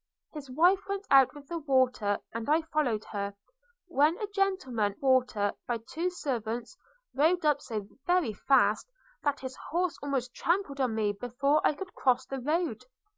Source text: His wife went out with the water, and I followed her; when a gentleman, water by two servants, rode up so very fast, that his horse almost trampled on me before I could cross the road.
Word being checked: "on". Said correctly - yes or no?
yes